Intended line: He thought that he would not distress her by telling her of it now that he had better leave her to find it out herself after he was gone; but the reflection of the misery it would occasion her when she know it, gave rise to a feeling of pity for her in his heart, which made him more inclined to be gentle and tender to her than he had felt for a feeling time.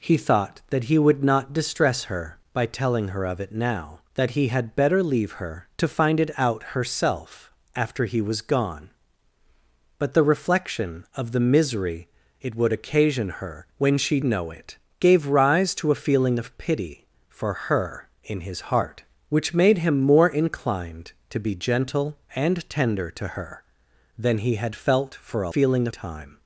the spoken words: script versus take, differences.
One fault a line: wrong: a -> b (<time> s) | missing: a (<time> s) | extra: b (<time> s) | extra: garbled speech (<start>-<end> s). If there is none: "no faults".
no faults